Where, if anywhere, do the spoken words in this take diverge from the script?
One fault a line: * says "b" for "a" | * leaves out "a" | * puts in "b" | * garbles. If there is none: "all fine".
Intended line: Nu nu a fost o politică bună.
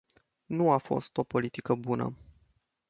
* leaves out "nu"